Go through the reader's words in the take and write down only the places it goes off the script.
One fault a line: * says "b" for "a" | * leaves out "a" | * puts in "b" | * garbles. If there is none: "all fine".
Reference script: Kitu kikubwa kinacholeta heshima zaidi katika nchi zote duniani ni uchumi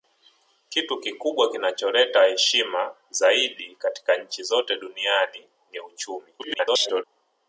* garbles